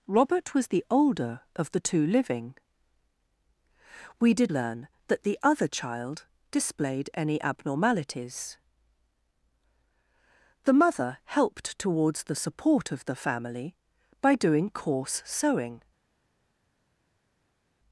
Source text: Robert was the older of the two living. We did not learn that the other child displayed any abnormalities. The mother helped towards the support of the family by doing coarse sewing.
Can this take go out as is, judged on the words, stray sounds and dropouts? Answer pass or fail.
fail